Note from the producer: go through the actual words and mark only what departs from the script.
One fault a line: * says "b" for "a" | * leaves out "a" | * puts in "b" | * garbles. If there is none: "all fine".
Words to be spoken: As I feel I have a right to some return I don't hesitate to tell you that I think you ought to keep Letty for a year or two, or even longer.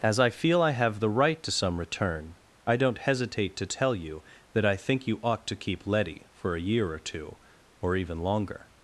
* says "the" for "a"